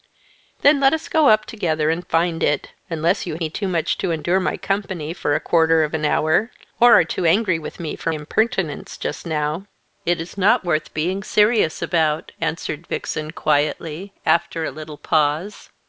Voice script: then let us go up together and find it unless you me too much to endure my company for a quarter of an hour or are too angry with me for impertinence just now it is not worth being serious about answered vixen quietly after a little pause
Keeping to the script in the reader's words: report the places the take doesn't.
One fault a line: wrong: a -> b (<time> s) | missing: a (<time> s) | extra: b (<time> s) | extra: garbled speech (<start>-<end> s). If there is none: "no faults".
no faults